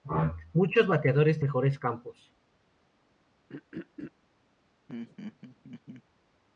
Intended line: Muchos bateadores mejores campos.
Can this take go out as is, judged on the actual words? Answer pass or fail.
pass